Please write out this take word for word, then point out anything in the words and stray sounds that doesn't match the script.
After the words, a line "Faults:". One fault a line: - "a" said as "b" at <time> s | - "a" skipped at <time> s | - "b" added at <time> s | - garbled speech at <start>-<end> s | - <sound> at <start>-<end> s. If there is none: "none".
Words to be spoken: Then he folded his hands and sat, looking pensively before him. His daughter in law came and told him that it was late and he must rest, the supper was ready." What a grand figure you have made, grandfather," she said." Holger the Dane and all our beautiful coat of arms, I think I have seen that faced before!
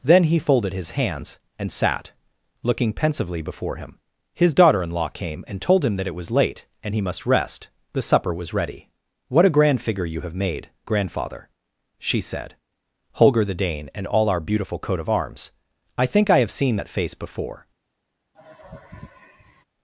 Then he folded his hands and sat, looking pensively before him. His daughter in law came and told him that it was late and he must rest, the supper was ready." What a grand figure you have made, grandfather," she said." Holger the Dane and all our beautiful coat of arms, I think I have seen that face before!
Faults:
- "faced" said as "face" at 16.9 s
- sigh at 18.3-19.6 s